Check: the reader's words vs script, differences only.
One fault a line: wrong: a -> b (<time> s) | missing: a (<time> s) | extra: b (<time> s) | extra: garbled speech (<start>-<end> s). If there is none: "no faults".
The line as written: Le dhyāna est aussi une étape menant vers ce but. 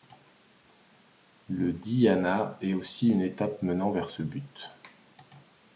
no faults